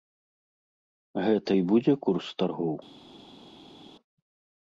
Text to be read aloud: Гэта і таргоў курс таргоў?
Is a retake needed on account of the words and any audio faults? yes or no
yes